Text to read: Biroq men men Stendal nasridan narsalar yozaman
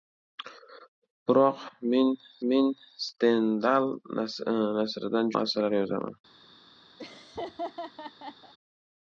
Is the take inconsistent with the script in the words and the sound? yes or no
yes